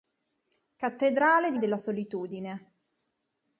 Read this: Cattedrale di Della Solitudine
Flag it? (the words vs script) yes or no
no